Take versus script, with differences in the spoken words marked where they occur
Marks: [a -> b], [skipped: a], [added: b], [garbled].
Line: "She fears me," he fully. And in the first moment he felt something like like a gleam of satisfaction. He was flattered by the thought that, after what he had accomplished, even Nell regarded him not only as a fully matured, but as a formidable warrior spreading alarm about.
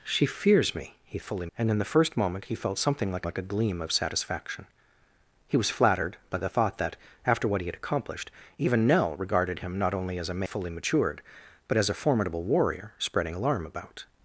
"She fears me," he fully. And in the first moment he felt something like like a gleam of satisfaction. He was flattered by the thought that, after what he had accomplished, even Nell regarded him not only as a fully matured, but as a formidable warrior spreading alarm about.